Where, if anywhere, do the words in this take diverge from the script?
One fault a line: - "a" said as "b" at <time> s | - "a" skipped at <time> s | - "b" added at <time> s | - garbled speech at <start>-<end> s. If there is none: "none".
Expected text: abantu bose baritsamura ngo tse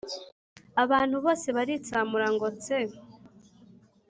none